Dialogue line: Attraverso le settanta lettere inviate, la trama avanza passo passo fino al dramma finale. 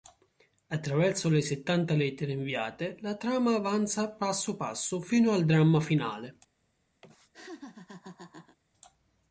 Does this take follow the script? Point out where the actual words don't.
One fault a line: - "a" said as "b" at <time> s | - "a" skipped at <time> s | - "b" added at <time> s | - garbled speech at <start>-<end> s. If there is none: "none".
none